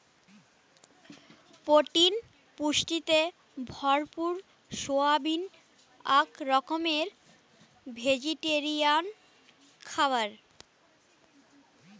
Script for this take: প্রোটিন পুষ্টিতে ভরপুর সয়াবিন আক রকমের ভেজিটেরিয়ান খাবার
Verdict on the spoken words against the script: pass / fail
pass